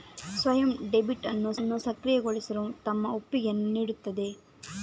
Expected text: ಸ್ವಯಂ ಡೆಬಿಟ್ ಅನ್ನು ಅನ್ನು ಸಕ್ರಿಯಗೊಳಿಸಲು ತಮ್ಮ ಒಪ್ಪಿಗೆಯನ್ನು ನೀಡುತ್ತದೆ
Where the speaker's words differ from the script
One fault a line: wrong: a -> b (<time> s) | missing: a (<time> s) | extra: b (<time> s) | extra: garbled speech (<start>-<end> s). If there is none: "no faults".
no faults